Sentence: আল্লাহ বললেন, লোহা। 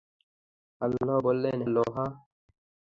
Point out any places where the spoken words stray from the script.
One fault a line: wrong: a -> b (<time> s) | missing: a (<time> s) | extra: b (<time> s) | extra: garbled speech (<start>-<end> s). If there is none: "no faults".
no faults